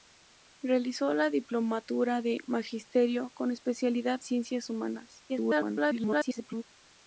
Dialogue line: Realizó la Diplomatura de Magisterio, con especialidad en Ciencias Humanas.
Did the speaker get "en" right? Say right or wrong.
wrong